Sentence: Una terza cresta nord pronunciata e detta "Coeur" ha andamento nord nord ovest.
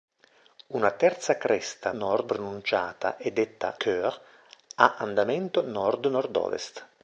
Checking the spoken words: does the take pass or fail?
pass